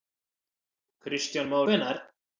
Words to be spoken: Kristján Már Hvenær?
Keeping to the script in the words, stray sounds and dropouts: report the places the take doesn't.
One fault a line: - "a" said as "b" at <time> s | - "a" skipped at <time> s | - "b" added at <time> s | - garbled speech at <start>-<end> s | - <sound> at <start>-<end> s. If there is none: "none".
none